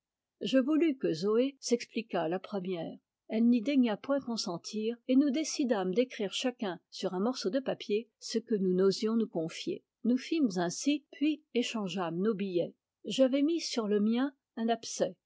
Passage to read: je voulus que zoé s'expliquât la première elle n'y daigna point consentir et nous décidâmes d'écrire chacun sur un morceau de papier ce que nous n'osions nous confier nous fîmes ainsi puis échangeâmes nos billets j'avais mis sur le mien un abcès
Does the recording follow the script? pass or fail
pass